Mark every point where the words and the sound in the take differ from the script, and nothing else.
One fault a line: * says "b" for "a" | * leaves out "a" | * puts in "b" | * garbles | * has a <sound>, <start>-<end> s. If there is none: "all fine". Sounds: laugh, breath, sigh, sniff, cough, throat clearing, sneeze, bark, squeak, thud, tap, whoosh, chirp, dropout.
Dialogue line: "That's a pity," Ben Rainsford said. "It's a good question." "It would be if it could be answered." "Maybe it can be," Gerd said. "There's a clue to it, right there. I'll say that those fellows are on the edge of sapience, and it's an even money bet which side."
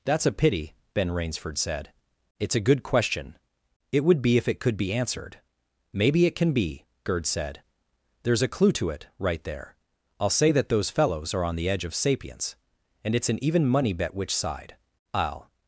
* puts in "I'll"